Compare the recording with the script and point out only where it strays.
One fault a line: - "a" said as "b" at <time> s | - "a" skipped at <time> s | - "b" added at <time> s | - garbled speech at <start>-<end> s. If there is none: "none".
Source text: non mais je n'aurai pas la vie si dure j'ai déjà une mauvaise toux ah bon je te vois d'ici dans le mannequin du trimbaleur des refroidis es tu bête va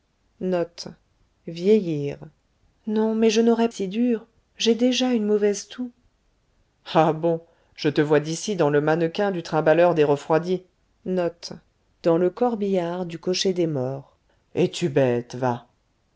- "pas la vie" skipped at 3.7 s